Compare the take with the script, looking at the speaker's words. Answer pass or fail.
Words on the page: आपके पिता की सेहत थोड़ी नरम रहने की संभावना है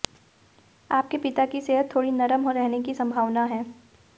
pass